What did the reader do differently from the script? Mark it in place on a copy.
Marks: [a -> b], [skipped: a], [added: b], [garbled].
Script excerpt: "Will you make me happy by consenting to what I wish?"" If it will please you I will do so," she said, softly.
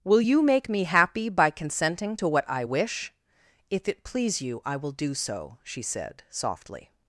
"Will you make me happy by consenting to what I wish?"" If it [skipped: will] please you I will do so," she said, softly.